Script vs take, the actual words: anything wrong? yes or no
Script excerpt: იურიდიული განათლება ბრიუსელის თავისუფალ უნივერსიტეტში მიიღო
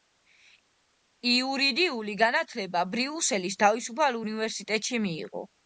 no